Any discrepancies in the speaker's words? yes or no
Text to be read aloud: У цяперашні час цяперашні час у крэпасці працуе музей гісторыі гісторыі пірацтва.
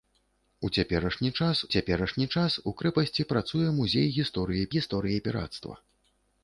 no